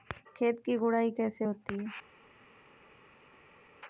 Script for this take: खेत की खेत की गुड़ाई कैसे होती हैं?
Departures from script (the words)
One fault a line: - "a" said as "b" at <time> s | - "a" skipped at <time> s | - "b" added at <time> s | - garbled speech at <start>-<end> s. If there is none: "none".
- "खेत की" skipped at 0.8 s